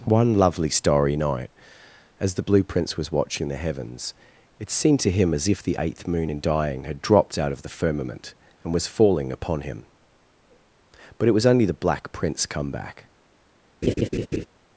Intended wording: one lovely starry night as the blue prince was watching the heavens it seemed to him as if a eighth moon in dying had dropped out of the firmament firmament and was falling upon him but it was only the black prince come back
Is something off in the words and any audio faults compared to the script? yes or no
yes